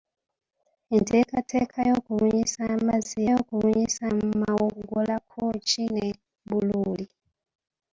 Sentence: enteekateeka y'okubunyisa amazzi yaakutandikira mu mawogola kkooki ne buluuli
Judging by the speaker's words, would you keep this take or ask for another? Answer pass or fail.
fail